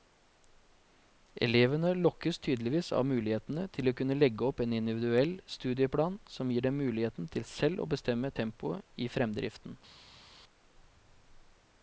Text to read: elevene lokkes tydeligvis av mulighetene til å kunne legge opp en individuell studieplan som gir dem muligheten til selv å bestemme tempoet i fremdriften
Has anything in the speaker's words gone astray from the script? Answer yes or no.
no